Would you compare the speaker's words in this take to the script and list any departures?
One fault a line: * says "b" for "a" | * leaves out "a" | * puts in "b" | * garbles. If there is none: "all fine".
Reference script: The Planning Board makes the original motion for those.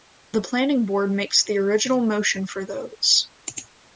all fine